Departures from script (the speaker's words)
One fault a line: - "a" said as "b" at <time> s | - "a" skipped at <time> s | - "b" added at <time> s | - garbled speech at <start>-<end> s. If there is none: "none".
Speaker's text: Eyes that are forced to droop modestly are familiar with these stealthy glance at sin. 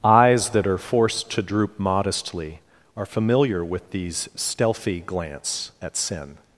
none